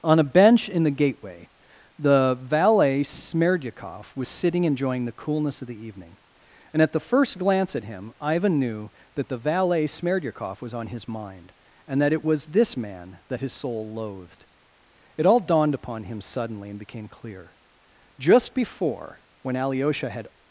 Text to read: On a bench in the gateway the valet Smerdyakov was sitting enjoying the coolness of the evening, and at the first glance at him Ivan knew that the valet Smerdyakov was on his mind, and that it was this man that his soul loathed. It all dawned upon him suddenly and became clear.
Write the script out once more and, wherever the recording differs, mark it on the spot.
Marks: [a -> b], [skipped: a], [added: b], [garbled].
On a bench in the gateway the valet Smerdyakov was sitting enjoying the coolness of the evening, and at the first glance at him Ivan knew that the valet Smerdyakov was on his mind, and that it was this man that his soul loathed. It all dawned upon him suddenly and became clear. [added: Just before when Alyosha had]